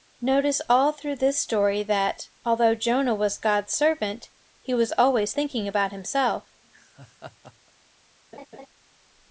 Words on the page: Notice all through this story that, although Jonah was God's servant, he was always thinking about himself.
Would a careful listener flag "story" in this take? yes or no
no